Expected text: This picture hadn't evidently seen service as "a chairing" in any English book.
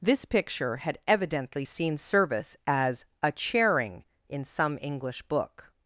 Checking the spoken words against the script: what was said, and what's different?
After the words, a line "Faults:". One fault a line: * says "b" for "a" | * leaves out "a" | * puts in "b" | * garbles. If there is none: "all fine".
This picture had evidently seen service as "a chairing" in some English book.
Faults:
* says "had" for "hadn't"
* says "some" for "any"